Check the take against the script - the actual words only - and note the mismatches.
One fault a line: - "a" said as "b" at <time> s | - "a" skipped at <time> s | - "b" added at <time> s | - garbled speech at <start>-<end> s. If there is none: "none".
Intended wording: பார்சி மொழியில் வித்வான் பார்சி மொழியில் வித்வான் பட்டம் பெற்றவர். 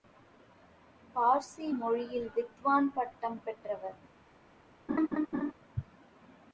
- "பார்சி மொழியில் வித்வான்" skipped at 2.9 s